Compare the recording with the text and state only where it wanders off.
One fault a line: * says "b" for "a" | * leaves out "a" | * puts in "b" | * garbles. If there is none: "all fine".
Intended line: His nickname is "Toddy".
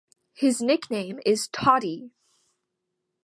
all fine